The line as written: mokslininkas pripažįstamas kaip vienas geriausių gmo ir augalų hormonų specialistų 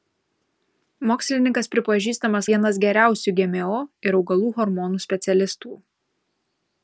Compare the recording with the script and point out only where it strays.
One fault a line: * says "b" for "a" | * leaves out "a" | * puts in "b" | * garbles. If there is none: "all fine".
* leaves out "kaip"